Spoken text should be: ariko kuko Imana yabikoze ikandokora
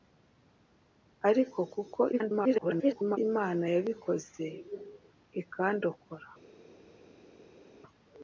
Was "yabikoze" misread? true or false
false